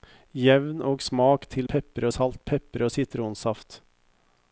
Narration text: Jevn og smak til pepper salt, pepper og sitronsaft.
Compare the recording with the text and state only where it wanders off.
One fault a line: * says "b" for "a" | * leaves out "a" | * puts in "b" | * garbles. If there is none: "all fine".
all fine